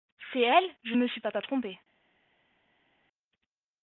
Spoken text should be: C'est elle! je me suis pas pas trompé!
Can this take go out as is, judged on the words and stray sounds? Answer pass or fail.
pass